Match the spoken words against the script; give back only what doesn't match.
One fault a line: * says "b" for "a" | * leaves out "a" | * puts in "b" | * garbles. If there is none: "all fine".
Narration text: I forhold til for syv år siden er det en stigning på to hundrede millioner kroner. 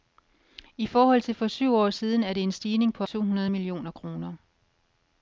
all fine